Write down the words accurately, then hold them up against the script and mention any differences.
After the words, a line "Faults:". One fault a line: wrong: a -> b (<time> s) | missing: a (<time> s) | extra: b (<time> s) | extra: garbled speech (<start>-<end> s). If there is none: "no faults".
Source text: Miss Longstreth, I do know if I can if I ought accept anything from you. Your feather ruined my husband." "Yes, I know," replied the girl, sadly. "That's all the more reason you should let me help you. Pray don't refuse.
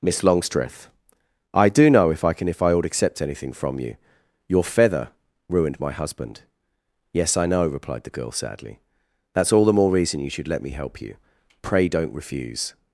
Miss Longstreth, I do know if I can if I ought accept anything from you. Your feather ruined my husband." "Yes, I know," replied the girl, sadly. "That's all the more reason you should let me help you. Pray don't refuse.
Faults:
no faults